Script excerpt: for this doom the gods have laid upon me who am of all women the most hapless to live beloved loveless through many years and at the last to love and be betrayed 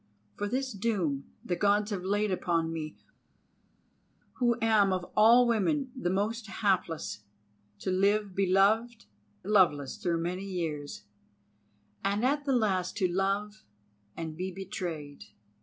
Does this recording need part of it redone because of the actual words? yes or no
no